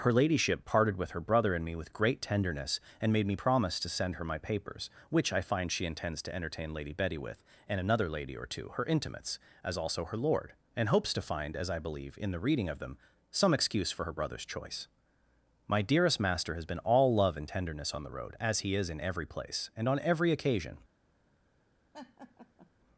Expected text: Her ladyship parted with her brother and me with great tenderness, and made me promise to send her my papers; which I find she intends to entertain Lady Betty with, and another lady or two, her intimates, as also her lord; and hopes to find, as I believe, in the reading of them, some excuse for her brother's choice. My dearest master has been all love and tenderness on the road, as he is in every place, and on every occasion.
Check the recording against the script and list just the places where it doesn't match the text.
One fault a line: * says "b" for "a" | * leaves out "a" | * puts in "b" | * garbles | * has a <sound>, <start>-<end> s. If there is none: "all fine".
* has a laugh, 21.9-22.7 s